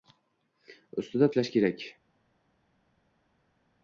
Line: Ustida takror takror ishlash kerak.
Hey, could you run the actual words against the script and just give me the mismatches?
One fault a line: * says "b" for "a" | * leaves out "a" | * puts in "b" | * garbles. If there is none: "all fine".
* leaves out "takror takror"